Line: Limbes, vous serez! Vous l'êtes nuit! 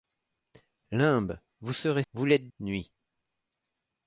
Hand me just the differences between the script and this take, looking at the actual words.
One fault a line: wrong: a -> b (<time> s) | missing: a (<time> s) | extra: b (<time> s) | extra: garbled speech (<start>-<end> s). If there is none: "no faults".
no faults